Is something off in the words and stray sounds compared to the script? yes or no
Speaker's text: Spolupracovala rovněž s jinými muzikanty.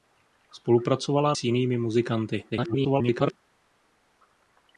yes